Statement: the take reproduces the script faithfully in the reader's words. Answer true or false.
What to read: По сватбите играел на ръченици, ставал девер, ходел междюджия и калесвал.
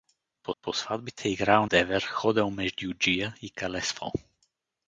false